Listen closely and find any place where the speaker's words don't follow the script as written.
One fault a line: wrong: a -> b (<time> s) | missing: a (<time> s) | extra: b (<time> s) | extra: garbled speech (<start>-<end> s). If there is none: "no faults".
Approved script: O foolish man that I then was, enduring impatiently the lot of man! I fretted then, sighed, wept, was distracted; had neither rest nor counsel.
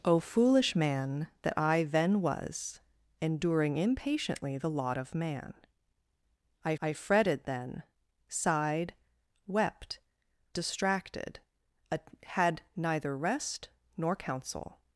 extra: I (6.8 s)
missing: was (10.0 s)